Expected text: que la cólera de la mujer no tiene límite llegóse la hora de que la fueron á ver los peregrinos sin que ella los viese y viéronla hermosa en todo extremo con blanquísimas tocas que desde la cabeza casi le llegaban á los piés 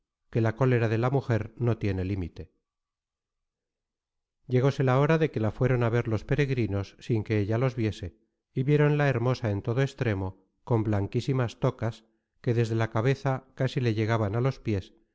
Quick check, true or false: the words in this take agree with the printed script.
true